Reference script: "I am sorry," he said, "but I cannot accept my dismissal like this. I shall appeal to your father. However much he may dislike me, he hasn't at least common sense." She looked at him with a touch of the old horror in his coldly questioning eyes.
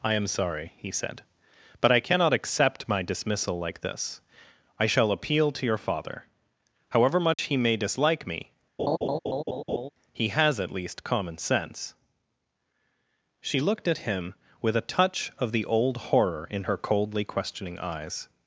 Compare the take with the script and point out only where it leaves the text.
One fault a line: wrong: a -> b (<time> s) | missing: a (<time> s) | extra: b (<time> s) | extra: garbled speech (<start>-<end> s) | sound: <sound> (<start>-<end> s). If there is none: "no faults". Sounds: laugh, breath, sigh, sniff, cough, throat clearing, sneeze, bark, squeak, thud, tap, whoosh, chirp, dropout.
sound: dropout (7.3-7.4 s)
sound: laugh (8.8-9.9 s)
wrong: hasn't -> has (10.3 s)
wrong: his -> her (16.6 s)